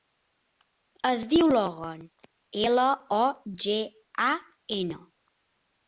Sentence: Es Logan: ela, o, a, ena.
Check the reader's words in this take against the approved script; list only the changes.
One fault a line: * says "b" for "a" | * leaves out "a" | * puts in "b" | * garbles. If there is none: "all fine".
* puts in "diu"
* puts in "ge"